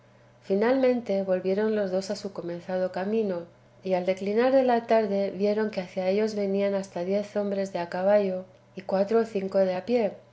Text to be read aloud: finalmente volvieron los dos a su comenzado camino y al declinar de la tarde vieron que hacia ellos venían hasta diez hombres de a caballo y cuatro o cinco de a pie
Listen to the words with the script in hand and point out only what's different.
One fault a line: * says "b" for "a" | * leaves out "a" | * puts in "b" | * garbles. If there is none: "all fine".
all fine